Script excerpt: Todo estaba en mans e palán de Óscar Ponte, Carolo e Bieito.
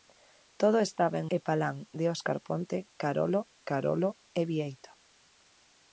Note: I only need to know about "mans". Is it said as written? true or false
false